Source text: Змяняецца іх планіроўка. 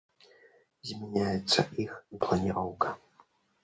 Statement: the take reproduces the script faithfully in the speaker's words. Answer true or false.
true